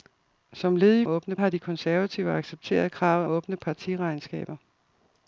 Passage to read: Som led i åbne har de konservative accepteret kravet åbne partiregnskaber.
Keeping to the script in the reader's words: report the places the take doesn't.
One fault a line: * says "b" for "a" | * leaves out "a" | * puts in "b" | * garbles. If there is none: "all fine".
all fine